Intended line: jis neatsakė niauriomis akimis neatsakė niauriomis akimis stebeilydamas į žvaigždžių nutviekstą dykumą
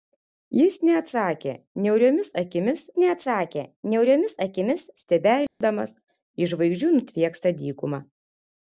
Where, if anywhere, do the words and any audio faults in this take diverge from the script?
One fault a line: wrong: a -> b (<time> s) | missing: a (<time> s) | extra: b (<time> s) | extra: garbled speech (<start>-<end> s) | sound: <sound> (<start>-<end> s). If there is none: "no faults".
sound: dropout (5.5-5.6 s)